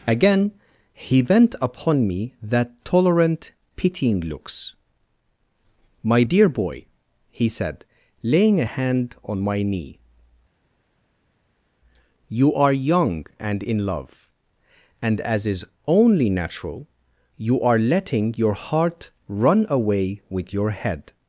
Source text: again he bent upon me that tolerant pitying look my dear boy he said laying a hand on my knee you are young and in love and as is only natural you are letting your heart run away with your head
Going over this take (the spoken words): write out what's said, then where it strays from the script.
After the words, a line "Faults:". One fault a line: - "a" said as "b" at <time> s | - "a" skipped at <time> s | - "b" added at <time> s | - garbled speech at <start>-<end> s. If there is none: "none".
again he bent upon me that tolerant pitying looks my dear boy he said laying a hand on my knee you are young and in love and as is only natural you are letting your heart run away with your head
Faults:
- "look" said as "looks" at 4.2 s